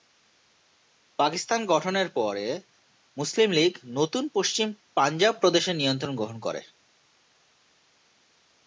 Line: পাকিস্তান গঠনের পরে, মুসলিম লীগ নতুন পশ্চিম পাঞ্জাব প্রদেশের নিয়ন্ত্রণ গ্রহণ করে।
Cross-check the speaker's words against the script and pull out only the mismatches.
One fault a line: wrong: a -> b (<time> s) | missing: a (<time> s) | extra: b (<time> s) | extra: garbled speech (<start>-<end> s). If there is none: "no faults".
no faults